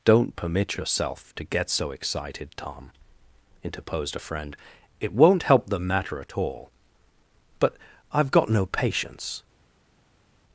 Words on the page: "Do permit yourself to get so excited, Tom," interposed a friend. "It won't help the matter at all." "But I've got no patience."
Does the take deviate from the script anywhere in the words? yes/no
yes